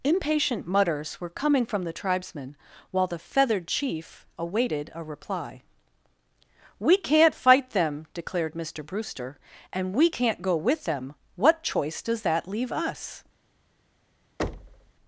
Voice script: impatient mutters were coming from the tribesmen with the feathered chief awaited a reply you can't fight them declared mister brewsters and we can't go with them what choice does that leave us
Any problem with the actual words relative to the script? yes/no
yes